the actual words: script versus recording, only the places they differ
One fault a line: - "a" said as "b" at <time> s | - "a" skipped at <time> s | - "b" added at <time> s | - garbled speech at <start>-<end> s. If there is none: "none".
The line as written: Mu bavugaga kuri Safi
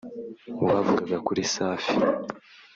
none